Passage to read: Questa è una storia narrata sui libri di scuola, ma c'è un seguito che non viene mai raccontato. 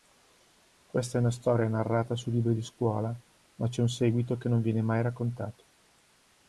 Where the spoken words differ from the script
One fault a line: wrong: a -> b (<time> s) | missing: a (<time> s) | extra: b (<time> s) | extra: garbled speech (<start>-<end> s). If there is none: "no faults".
no faults